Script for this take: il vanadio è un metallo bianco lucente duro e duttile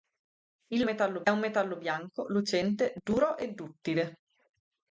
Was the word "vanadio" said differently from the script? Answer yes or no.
yes